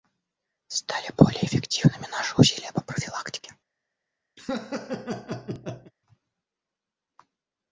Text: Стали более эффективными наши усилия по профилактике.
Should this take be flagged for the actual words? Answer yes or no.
no